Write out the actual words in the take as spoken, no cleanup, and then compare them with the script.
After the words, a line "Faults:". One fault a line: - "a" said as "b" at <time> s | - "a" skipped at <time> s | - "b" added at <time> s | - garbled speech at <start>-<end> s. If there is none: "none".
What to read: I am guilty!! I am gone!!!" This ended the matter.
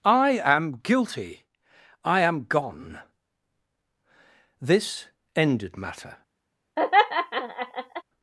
I am guilty!! I am gone!!!" This ended matter.
Faults:
- "the" skipped at 5.8 s